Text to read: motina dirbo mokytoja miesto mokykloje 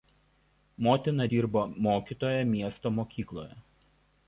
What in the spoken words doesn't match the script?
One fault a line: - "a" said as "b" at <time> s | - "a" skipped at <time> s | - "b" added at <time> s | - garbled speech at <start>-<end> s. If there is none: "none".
none